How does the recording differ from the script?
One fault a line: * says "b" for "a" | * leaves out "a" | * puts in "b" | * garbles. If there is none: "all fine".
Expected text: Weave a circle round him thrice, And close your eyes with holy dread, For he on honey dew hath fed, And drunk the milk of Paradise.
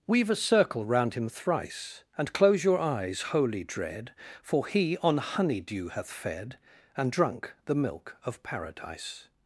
* leaves out "with"